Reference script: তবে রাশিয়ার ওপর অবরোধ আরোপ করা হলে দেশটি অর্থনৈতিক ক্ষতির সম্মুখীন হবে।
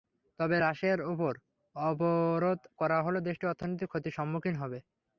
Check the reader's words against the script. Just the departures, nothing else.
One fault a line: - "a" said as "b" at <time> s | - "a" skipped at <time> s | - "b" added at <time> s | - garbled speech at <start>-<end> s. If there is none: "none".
- "আরোপ" skipped at 2.6 s